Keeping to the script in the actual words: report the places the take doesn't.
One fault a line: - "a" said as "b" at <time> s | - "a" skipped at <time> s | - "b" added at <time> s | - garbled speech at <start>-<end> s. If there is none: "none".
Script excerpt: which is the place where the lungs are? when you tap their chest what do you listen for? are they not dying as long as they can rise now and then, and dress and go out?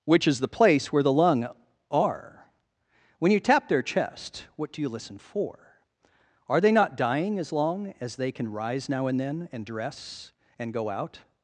- "lungs" said as "lung" at 1.1 s